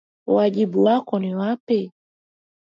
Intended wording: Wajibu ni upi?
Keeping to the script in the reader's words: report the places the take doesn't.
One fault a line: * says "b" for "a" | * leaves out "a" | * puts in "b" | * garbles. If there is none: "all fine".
* puts in "wako"